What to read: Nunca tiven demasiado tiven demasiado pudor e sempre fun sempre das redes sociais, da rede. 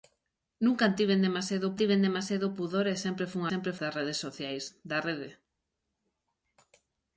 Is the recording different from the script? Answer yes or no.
no